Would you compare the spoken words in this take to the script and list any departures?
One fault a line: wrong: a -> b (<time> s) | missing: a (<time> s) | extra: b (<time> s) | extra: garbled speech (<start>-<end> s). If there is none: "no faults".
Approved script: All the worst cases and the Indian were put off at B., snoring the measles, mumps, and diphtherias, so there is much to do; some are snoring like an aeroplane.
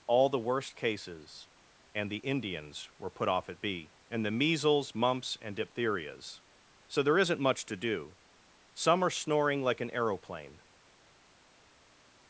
wrong: Indian -> Indians (2.2 s)
wrong: snoring -> and (4.1 s)
wrong: is -> isn't (7.2 s)